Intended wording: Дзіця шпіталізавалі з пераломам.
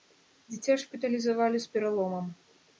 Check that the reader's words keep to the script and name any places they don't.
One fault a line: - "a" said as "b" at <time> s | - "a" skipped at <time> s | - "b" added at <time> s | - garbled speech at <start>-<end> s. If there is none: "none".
none